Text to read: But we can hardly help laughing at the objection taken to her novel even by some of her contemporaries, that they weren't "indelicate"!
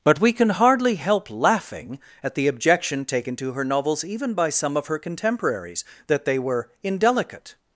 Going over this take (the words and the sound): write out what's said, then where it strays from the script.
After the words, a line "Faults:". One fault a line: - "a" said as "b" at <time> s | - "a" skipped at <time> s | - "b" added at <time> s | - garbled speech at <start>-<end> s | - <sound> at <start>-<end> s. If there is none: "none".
But we can hardly help laughing at the objection taken to her novels even by some of her contemporaries, that they were "indelicate"!
Faults:
- "novel" said as "novels" at 3.6 s
- "weren't" said as "were" at 6.4 s